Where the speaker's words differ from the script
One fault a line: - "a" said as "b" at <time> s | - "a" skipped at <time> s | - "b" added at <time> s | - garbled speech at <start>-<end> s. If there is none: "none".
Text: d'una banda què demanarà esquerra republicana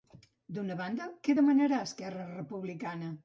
none